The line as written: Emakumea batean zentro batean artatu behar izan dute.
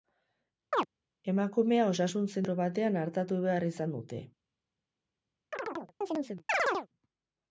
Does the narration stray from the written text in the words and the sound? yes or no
yes